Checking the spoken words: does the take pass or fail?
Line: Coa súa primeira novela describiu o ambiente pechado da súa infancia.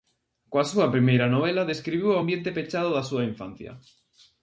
pass